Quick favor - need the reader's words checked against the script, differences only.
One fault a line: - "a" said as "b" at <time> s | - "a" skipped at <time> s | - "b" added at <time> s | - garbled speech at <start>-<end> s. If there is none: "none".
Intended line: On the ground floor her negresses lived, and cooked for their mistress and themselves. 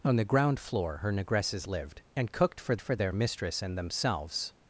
- "for" added at 2.8 s